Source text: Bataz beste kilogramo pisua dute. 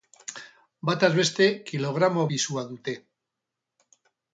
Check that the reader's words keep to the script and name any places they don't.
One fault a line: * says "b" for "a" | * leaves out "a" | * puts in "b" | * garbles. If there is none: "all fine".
all fine